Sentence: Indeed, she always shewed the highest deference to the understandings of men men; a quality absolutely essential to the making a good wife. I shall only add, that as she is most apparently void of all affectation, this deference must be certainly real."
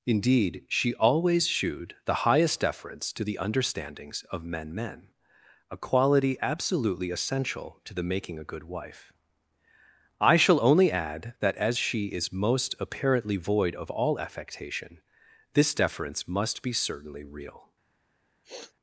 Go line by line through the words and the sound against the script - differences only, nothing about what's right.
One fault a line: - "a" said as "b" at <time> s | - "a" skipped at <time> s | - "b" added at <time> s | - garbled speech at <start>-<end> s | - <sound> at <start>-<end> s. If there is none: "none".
- sniff at 18.4-18.7 s